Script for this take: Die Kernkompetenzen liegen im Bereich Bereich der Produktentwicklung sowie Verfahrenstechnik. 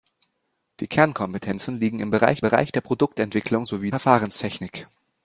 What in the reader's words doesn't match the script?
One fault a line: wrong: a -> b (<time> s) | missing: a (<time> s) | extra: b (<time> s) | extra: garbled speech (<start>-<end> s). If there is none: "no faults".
no faults